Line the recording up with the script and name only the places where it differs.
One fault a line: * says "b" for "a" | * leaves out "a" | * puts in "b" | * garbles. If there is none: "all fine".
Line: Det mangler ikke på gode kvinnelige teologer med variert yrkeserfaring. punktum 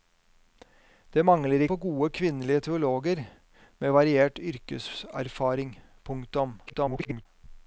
* leaves out "ikke"
* garbles